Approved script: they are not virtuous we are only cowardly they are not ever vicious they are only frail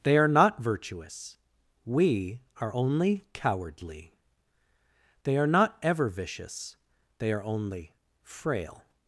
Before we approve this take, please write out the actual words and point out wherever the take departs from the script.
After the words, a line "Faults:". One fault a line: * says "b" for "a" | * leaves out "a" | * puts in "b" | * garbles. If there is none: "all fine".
they are not virtuous we are only cowardly they are not ever vicious they are only frail
Faults:
all fine